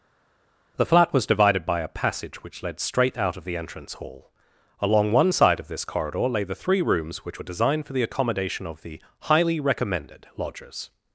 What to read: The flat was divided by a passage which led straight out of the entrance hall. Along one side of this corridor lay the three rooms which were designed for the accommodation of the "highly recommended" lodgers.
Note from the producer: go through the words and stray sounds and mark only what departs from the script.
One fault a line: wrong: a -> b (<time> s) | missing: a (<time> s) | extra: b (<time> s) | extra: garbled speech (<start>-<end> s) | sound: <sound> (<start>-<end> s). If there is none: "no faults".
no faults